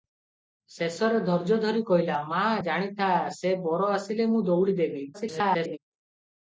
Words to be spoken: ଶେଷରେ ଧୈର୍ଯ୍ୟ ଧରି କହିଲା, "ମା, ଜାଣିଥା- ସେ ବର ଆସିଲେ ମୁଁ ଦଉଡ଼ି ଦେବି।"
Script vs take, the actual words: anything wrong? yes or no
yes